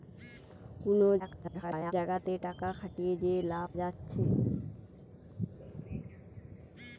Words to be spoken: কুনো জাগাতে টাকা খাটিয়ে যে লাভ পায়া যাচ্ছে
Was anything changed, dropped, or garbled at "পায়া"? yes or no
yes